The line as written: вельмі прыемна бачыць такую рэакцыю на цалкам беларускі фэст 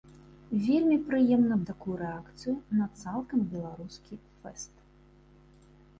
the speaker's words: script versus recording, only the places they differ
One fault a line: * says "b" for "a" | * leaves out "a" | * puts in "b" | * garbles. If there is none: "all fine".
* leaves out "бачыць"